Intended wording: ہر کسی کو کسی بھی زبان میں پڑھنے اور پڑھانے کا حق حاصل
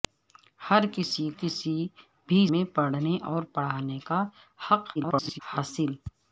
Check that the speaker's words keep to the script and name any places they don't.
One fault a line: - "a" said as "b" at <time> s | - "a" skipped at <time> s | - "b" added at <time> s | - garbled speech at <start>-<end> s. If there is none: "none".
- "کو" skipped at 1.3 s
- "زبان" skipped at 2.5 s
- garbled speech at 4.9-5.4 s